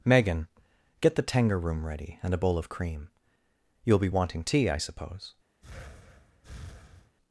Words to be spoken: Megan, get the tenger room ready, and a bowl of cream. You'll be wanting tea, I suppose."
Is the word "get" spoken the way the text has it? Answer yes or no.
yes